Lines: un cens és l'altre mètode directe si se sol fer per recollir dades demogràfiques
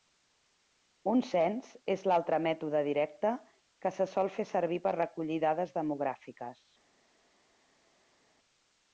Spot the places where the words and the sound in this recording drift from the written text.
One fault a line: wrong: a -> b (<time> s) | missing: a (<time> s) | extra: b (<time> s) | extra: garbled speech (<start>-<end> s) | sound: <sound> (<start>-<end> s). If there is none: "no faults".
wrong: si -> que (3.9 s)
extra: servir (4.6 s)